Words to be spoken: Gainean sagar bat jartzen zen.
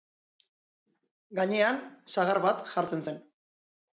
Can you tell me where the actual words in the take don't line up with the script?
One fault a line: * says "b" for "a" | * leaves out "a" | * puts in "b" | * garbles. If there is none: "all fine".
all fine